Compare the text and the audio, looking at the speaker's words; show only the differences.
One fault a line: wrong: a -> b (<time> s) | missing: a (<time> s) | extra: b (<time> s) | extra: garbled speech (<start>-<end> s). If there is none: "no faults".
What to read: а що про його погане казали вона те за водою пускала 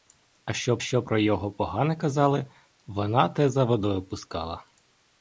extra: що (0.8 s)